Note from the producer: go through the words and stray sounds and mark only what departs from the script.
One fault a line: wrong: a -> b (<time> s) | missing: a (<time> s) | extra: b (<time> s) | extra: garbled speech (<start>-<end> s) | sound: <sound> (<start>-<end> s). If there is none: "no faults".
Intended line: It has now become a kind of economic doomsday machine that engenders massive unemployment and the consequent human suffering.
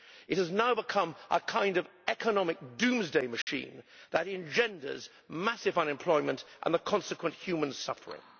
sound: dropout (3.4-3.5 s)